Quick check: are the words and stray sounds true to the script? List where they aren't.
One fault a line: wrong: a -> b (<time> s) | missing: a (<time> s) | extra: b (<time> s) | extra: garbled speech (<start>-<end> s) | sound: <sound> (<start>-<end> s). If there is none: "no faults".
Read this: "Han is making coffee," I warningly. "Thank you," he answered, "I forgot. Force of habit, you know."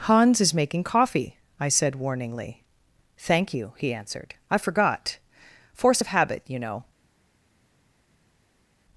wrong: Han -> Hans (0.1 s)
extra: said (1.7 s)